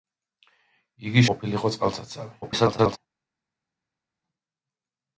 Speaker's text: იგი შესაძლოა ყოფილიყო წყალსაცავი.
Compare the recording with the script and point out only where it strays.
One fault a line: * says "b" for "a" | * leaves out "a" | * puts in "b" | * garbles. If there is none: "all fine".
* leaves out "შესაძლოა"
* garbles